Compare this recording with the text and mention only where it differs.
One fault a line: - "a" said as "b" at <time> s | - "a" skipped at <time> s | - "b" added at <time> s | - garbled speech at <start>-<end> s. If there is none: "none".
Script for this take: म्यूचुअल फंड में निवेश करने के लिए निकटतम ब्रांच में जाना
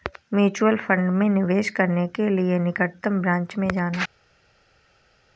none